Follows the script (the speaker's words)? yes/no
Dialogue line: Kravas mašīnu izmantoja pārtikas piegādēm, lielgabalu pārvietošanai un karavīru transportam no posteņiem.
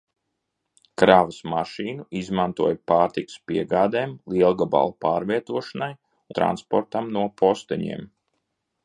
no